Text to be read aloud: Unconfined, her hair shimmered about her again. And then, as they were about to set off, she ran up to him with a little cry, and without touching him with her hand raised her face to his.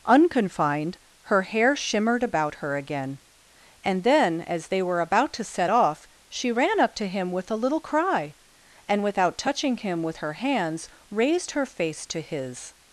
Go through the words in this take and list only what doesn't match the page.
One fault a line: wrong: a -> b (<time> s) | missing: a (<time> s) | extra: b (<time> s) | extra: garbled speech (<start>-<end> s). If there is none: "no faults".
wrong: hand -> hands (10.3 s)